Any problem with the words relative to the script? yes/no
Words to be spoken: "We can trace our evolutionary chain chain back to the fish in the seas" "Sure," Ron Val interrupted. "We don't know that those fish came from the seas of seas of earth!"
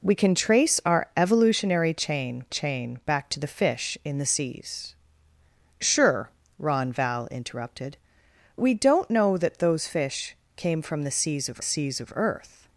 no